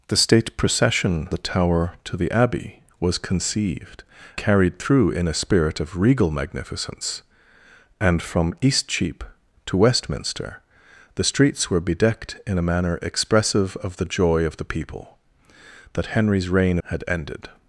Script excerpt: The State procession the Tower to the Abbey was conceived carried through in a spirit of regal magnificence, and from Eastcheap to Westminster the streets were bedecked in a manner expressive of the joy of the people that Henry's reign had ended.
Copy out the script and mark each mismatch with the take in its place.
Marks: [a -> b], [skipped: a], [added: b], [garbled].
The State procession the Tower to the Abbey was conceived carried through in a spirit of regal magnificence, and from Eastcheap to Westminster the streets were bedecked in a manner expressive of the joy of the people that Henry's reign had ended.